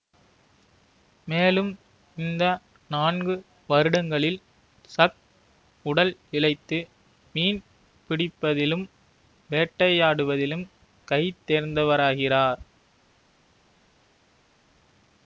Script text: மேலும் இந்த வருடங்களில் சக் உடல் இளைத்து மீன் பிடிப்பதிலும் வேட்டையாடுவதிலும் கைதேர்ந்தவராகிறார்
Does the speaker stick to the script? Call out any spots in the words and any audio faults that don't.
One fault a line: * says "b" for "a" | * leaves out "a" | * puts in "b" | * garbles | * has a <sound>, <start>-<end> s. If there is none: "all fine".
* puts in "நான்கு"